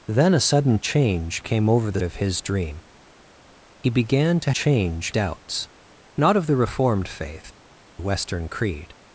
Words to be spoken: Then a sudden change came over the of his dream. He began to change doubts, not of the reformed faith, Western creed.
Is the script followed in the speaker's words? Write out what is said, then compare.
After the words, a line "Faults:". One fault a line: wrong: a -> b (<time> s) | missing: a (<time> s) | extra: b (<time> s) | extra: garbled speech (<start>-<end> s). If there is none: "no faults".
Then a sudden change came over the of his dream. He began to change doubts, not of the reformed faith, Western creed.
Faults:
no faults